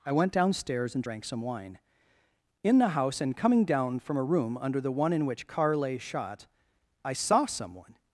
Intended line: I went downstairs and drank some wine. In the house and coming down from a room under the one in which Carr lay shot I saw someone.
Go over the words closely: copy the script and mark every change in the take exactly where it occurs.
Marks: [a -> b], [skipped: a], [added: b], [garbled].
I went downstairs and drank some wine. In the house and coming down from a room under the one in which Carr lay shot I saw someone.